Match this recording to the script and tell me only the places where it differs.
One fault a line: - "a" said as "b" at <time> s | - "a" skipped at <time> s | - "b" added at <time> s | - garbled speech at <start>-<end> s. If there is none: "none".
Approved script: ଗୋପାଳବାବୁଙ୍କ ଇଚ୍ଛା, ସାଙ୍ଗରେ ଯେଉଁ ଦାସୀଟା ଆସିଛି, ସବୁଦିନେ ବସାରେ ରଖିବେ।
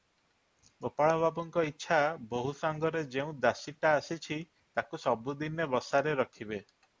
- "ବୋହୂ" added at 2.3 s
- "ତାକୁ" added at 4.8 s